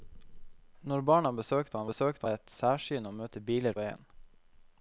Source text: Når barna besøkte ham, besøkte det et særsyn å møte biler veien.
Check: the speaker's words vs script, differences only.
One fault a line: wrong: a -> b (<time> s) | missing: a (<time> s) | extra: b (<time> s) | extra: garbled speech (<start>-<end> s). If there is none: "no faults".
no faults